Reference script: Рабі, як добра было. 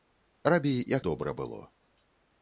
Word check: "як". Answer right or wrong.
right